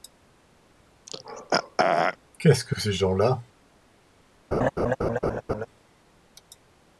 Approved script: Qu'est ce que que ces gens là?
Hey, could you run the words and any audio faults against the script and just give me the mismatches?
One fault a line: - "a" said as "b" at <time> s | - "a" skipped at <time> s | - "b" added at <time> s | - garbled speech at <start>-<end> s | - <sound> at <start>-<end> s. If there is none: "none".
- throat clearing at 1.1-2.2 s
- laugh at 4.5-5.7 s